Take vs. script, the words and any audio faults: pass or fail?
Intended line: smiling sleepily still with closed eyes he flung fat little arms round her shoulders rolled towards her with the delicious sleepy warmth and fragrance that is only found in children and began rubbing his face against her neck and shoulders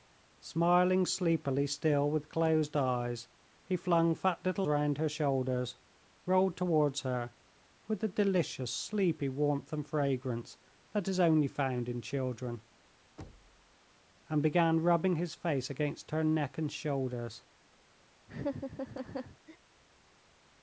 fail